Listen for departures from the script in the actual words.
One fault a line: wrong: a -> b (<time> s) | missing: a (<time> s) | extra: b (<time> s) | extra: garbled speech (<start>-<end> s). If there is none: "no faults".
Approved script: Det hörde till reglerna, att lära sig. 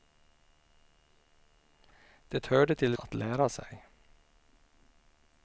missing: reglerna (3.0 s)